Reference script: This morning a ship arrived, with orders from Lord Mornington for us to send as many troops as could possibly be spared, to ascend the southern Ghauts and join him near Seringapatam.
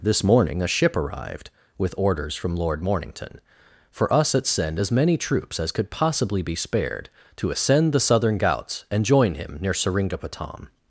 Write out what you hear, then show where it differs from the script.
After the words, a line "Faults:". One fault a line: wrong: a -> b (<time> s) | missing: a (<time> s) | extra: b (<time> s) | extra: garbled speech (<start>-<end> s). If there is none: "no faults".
This morning a ship arrived, with orders from Lord Mornington for us at send as many troops as could possibly be spared, to ascend the southern Ghauts and join him near Seringapatam.
Faults:
wrong: to -> at (4.3 s)